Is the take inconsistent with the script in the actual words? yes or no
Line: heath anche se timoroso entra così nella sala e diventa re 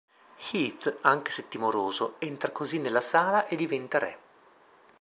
no